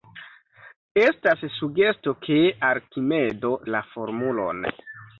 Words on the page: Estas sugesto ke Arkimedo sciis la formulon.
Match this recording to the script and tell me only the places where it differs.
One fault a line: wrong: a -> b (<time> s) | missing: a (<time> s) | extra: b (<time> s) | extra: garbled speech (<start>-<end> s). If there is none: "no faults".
missing: sciis (3.5 s)